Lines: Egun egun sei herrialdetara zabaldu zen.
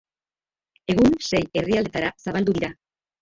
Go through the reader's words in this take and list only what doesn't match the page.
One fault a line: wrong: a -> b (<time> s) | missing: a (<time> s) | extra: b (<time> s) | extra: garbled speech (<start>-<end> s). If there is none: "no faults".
missing: egun (1.1 s)
wrong: zen -> dira (2.6 s)